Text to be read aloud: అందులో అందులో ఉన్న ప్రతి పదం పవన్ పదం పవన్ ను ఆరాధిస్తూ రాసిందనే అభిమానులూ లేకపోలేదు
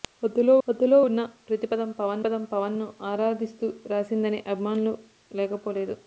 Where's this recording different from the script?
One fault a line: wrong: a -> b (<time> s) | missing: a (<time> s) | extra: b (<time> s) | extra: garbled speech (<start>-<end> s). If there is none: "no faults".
no faults